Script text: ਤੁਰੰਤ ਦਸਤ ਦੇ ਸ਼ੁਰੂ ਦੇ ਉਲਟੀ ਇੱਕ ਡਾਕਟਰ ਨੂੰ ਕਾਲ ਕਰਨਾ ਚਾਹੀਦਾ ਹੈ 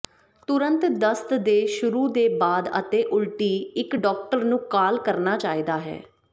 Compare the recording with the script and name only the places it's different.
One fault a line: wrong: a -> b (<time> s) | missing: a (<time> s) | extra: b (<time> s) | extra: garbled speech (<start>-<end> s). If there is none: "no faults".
extra: ਬਾਅਦ ਅਤੇ (2.4 s)